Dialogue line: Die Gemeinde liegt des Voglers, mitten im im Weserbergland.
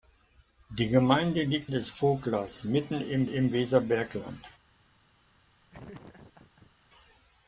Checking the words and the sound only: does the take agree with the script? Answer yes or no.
no